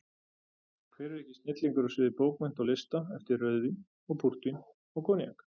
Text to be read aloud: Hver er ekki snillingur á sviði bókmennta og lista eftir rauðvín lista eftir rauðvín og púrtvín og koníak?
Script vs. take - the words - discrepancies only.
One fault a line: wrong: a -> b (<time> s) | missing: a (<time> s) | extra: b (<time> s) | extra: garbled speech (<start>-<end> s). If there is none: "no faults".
missing: lista eftir rauðvín (3.8 s)